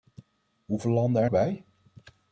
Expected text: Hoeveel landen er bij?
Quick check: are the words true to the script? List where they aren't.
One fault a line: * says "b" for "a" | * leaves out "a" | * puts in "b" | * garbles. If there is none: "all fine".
all fine